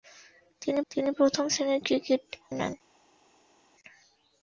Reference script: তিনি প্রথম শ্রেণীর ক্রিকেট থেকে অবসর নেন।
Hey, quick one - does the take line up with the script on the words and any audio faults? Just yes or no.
no